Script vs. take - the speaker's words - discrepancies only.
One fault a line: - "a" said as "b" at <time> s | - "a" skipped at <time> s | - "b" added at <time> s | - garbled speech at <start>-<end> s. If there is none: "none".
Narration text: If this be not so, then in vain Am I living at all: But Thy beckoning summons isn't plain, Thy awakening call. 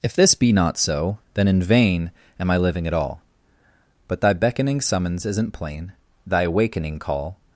none